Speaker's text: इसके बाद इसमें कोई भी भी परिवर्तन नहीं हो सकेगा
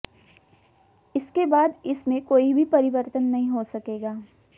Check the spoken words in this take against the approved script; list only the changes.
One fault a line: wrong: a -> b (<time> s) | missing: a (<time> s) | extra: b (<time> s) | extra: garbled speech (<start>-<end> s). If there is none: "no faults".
missing: भी (2.6 s)